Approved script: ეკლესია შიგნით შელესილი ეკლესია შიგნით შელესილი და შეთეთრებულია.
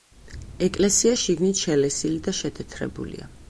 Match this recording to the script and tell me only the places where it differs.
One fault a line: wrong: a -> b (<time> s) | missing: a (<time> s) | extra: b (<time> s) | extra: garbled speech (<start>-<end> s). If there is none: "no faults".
missing: ეკლესია შიგნით შელესილი (2.2 s)